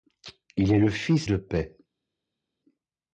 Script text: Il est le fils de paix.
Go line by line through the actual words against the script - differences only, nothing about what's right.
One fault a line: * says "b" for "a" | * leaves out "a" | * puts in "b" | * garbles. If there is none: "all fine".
all fine